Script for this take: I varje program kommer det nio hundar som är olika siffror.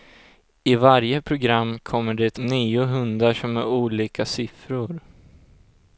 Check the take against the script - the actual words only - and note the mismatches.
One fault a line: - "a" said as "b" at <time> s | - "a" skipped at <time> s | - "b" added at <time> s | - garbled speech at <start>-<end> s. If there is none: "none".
none